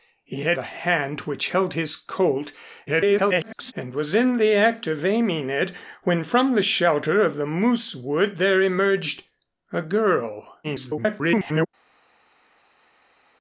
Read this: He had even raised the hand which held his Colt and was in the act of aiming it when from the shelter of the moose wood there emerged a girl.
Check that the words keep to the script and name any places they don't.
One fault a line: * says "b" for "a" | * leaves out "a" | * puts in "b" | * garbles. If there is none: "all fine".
* leaves out "even raised"
* garbles
* garbles